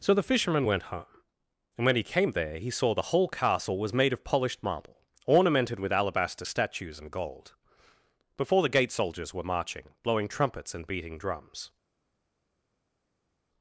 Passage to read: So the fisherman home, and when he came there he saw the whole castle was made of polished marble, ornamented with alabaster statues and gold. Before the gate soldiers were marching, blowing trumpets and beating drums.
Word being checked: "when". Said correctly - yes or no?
yes